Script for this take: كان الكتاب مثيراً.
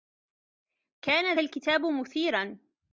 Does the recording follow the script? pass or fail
pass